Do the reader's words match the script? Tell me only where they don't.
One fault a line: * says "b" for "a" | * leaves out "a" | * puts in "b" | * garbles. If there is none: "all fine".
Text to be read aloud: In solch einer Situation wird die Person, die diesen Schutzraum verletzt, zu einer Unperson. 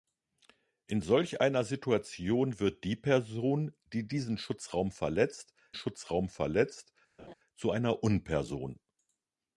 * puts in "Schutzraum verletzt"